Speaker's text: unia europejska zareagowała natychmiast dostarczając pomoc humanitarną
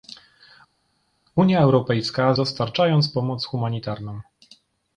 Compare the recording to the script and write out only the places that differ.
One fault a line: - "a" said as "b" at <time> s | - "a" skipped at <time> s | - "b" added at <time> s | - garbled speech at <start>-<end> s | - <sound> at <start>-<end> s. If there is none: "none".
- "zareagowała natychmiast" skipped at 2.3 s